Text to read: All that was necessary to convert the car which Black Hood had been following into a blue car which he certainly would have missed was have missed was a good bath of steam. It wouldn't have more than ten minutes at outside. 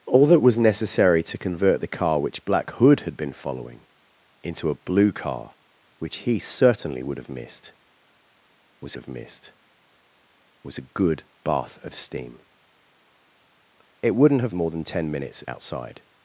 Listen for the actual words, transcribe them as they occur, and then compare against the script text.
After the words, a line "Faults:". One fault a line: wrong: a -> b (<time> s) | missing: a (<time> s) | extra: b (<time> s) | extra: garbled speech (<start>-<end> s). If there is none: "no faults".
All that was necessary to convert the car which Black Hood had been following into a blue car which he certainly would have missed was have missed was a good bath of steam. It wouldn't have more than ten minutes at outside.
Faults:
no faults